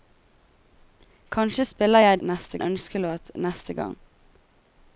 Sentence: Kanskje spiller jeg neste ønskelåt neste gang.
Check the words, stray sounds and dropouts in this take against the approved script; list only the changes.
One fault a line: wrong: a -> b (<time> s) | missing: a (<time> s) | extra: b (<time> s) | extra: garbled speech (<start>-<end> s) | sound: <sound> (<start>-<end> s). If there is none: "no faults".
no faults